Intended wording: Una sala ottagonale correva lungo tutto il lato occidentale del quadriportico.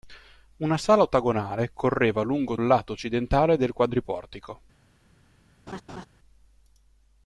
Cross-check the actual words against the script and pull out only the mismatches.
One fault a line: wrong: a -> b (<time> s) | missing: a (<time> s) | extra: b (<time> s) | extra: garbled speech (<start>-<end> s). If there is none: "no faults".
missing: tutto (2.6 s)